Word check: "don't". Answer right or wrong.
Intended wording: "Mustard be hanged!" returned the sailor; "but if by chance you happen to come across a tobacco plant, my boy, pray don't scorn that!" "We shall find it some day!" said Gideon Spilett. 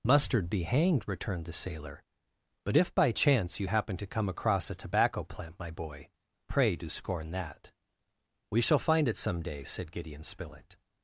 wrong